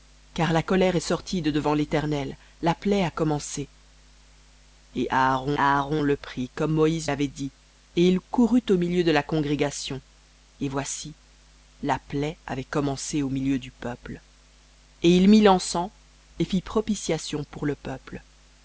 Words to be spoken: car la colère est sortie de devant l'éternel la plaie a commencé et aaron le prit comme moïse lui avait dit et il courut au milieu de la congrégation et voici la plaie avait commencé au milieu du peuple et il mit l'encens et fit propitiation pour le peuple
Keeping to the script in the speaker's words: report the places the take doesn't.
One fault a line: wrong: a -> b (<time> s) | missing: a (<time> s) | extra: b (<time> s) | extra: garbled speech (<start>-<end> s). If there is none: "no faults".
extra: aaron (5.6 s)
missing: lui (7.1 s)